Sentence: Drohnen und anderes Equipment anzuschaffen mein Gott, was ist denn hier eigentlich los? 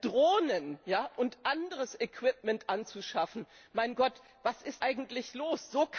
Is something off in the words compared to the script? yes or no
yes